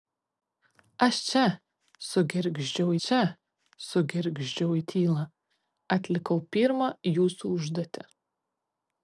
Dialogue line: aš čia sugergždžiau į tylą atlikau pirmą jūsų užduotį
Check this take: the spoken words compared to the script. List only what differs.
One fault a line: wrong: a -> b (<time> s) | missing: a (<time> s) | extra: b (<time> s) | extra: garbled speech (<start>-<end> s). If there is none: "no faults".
extra: čia sugergždžiau (3.0 s)